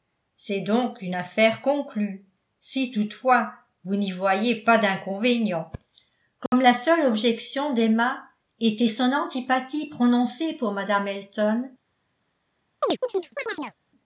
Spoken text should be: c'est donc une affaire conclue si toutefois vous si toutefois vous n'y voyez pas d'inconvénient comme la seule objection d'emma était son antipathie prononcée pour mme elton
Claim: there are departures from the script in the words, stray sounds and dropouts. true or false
true